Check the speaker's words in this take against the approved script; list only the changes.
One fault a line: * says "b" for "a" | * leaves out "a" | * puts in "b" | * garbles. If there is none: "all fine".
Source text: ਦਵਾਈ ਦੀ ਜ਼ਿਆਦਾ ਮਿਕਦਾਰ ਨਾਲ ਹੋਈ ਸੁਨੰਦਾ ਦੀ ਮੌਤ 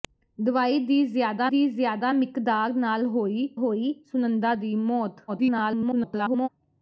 * puts in "ਦੀ ਜ਼ਿਆਦਾ"
* puts in "ਹੋਈ"
* garbles